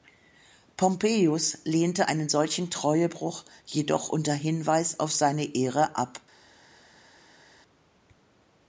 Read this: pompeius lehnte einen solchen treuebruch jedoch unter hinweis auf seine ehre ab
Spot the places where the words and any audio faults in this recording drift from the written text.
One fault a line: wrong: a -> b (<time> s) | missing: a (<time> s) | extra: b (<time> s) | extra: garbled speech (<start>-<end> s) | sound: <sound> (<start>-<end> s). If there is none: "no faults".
no faults